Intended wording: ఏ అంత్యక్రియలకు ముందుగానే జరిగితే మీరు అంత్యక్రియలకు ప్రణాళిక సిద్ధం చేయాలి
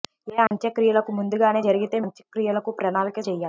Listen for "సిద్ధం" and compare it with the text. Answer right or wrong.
wrong